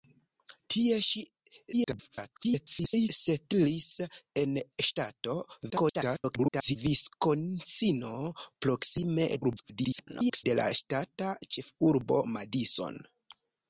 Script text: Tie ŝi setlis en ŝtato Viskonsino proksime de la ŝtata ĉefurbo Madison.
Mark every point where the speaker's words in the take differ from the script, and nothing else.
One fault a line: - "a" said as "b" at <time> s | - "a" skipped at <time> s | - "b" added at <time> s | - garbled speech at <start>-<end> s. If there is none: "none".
- garbled speech at 1.7-3.1 s
- garbled speech at 5.7-6.8 s
- garbled speech at 9.4-10.4 s